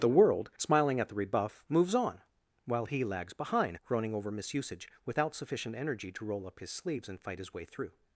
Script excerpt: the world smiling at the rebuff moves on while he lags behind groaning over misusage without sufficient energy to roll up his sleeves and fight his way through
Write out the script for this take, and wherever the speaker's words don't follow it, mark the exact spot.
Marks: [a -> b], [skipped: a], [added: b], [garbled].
the world smiling at the rebuff moves on while he lags behind groaning over misusage without sufficient energy to roll up his sleeves and fight his way through